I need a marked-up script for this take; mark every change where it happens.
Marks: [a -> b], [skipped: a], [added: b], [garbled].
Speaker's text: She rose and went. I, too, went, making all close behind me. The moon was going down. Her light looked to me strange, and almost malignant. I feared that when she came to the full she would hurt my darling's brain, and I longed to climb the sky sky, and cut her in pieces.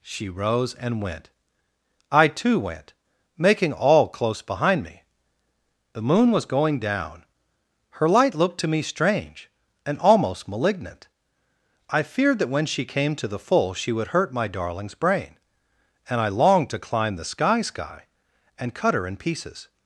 She rose and went. I, too, went, making all close behind me. The moon was going down. Her light looked to me strange, and almost malignant. I feared that when she came to the full she would hurt my darling's brain, and I longed to climb the sky sky, and cut her in pieces.